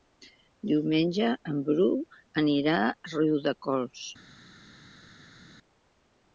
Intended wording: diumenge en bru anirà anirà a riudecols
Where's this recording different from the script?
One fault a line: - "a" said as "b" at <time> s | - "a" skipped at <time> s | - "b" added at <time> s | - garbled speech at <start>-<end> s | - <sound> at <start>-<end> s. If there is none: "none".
- "anirà" skipped at 2.8 s